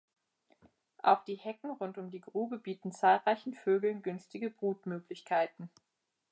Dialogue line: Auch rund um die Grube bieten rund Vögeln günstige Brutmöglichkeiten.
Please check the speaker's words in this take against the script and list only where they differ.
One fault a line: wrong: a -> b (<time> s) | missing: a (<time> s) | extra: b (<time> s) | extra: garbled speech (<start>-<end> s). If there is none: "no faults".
extra: die Hecken (1.2 s)
wrong: rund -> zahlreichen (2.9 s)